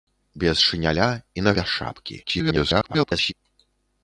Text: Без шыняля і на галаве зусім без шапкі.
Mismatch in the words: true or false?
true